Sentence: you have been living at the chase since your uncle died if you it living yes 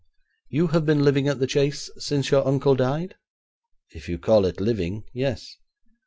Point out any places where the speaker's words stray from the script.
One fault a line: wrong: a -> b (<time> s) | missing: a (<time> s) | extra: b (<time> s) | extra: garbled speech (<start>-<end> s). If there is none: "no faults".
extra: call (4.2 s)